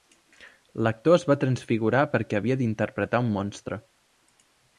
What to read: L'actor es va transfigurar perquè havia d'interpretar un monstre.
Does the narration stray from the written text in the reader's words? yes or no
no